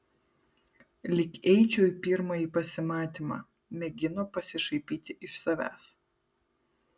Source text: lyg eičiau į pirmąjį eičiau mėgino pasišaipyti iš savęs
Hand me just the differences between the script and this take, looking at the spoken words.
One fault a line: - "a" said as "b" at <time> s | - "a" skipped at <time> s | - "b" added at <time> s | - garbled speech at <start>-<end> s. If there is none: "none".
- "eičiau" said as "pasimatymą" at 2.5 s